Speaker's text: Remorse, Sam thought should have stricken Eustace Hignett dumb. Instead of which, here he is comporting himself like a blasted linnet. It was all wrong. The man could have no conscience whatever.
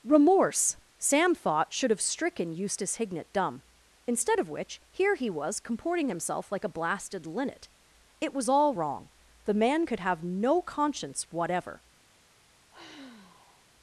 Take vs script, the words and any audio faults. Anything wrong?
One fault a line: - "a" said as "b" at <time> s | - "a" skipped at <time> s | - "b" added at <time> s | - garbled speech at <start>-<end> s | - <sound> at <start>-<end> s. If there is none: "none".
- "is" said as "was" at 5.3 s
- sigh at 12.7-13.7 s